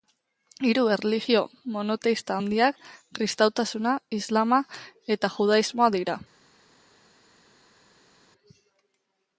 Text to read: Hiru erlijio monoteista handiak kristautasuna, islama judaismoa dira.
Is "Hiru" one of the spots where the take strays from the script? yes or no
no